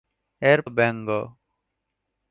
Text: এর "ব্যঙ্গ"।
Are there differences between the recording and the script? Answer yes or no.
no